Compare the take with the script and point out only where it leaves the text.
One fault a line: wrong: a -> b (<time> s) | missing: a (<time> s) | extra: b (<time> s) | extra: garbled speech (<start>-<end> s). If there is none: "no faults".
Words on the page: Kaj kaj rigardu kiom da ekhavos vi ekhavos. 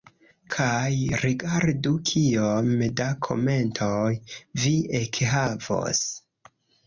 missing: kaj (0.9 s)
wrong: ekhavos -> komentoj (3.3 s)